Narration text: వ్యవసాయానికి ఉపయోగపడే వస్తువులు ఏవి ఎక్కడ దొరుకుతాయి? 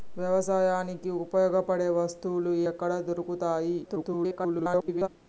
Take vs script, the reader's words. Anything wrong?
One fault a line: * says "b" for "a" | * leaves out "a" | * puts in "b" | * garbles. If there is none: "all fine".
* leaves out "ఏవి"
* garbles